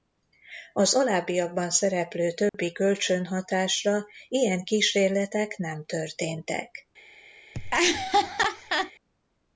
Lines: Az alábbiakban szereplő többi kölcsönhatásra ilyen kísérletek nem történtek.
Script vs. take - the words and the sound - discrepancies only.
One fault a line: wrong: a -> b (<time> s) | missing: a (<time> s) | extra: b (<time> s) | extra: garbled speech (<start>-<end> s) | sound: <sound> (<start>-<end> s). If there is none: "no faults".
sound: dropout (2.5-2.5 s)
sound: laugh (7.5-8.9 s)